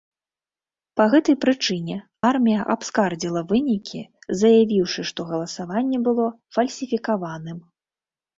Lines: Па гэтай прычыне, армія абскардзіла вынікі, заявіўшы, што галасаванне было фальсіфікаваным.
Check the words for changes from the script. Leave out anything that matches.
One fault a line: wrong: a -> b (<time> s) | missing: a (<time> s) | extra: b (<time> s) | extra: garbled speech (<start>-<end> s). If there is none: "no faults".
no faults